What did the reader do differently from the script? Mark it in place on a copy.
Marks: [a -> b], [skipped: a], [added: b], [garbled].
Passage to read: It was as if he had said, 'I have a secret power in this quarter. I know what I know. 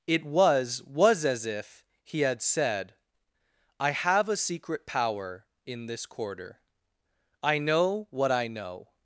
It was [added: was] as if he had said, 'I have a secret power in this quarter. I know what I know.